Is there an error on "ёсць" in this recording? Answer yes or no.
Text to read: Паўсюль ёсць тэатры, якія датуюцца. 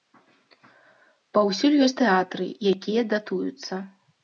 no